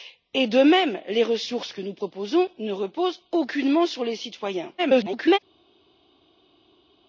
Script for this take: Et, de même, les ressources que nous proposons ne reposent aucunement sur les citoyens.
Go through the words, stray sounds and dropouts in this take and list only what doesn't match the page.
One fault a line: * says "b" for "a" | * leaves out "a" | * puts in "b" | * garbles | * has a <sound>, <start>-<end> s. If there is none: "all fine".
* garbles